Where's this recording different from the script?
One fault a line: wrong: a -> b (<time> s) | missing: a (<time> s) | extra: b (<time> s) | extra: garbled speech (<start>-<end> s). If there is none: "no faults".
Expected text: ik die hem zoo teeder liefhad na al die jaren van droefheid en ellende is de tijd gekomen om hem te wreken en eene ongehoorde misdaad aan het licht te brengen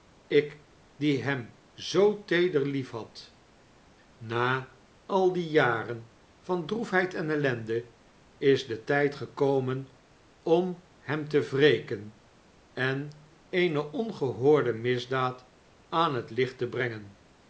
no faults